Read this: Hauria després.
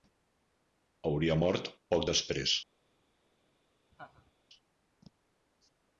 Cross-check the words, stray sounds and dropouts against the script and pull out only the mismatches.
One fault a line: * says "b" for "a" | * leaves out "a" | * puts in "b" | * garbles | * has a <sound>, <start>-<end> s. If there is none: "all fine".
* puts in "mort poc"
* has a laugh, 3.9-4.3 s